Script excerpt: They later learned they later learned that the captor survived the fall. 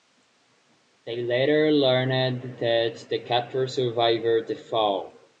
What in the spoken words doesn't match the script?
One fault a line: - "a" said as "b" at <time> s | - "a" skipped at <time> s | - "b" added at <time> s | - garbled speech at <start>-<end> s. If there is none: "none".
- "they later learned" skipped at 2.6 s